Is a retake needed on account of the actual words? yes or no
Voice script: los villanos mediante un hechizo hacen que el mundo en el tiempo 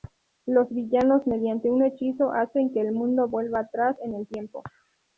yes